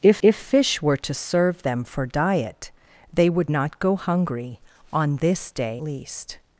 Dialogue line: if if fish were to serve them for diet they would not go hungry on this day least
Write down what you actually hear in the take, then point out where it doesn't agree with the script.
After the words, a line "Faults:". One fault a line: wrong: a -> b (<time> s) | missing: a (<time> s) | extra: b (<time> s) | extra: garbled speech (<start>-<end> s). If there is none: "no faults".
if if fish were to serve them for diet they would not go hungry on this day least
Faults:
no faults